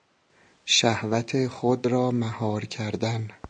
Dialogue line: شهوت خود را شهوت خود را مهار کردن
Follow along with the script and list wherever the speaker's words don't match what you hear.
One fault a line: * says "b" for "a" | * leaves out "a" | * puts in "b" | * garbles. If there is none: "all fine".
* leaves out "شهوت خود را"